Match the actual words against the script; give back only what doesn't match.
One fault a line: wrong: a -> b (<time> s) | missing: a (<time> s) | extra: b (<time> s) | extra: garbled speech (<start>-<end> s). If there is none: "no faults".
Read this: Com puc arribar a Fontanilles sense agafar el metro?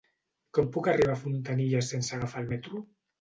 no faults